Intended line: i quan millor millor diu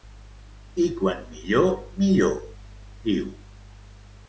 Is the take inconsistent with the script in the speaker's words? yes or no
no